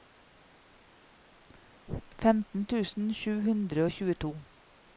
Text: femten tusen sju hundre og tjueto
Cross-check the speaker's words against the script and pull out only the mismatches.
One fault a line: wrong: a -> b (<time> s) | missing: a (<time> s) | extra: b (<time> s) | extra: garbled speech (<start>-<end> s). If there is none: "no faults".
no faults